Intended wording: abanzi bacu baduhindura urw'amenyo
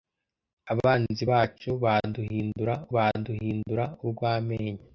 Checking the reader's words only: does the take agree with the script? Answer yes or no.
no